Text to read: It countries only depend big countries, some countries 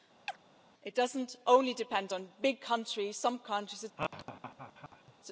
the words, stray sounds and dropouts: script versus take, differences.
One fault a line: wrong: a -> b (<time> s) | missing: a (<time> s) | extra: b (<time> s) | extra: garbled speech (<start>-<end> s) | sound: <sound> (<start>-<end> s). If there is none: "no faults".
sound: chirp (0.3-0.4 s)
wrong: countries -> doesn't (0.9 s)
extra: on (2.1 s)
sound: laugh (4.0-5.1 s)